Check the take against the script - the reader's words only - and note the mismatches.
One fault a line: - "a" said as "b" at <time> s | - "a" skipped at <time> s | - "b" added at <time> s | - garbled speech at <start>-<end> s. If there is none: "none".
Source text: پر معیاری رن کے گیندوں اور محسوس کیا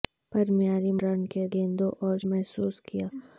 none